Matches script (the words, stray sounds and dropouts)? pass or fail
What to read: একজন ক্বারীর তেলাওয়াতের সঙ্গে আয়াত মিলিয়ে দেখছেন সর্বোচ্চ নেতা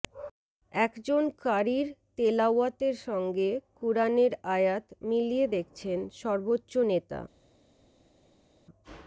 fail